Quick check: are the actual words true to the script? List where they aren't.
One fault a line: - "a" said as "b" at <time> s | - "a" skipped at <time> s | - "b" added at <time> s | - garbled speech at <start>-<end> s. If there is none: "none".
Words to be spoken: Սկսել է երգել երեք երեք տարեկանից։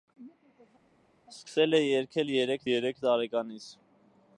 none